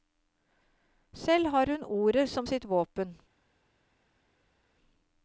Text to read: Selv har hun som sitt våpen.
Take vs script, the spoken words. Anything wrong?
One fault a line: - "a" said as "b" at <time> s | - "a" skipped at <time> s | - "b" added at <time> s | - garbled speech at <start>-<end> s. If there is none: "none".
- "ordet" added at 1.8 s